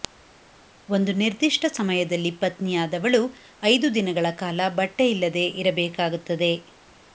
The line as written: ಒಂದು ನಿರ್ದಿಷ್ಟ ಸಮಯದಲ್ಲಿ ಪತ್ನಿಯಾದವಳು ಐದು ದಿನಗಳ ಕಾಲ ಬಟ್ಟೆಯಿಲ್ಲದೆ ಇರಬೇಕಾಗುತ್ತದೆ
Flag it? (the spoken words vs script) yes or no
no